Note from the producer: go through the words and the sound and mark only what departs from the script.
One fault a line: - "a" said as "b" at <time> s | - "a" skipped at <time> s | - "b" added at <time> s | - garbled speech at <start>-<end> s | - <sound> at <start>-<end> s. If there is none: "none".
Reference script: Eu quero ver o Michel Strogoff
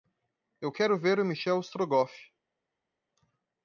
none